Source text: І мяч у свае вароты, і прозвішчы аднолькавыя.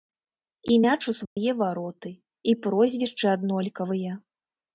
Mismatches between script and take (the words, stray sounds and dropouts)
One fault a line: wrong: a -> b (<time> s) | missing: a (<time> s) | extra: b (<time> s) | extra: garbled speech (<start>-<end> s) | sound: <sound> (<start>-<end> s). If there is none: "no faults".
sound: dropout (1.3-1.4 s)